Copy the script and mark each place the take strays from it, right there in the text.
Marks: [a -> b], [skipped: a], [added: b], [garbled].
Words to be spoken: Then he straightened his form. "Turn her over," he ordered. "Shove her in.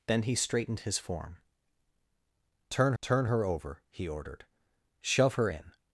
Then he straightened his form. "Turn [added: turn] her over," he ordered. "Shove her in.